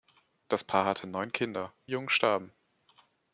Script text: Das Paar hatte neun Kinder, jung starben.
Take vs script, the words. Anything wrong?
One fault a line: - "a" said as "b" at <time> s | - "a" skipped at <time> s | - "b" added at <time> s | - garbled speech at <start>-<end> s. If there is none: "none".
none